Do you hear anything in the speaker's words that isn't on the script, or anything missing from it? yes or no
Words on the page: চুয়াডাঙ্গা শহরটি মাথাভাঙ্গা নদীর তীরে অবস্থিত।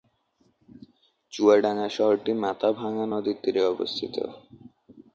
no